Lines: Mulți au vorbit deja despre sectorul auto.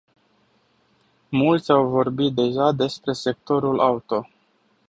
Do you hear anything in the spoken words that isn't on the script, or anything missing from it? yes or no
no